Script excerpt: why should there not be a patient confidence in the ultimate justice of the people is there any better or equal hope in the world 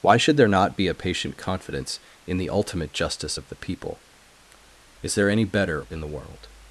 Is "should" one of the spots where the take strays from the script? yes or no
no